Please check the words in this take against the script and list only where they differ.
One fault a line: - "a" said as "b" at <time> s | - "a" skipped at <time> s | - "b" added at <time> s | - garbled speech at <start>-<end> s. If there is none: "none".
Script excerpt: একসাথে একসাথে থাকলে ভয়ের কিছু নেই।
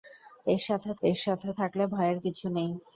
none